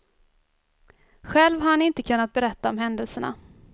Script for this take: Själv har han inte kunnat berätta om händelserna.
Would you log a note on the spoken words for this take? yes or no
no